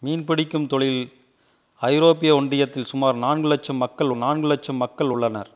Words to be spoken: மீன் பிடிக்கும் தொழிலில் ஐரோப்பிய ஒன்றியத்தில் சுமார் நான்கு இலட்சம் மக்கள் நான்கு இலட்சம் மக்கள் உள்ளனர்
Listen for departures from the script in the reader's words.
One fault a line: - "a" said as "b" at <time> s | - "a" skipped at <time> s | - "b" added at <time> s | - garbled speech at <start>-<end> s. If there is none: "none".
none